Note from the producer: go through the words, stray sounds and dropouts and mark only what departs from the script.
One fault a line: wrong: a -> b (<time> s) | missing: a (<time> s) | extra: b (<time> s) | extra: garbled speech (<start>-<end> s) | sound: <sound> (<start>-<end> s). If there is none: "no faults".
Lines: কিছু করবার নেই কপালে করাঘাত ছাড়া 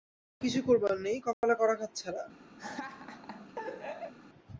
sound: dropout (1.3-1.4 s)
sound: laugh (2.6-4.1 s)